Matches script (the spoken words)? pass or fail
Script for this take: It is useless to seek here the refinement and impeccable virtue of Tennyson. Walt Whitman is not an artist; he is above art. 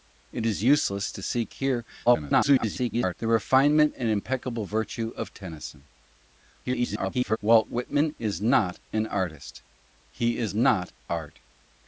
fail